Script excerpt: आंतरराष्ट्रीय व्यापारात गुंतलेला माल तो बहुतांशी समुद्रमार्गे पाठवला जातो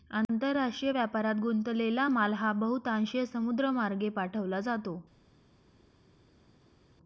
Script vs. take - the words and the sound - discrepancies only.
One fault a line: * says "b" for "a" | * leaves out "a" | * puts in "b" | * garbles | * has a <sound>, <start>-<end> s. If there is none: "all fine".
* says "हा" for "तो"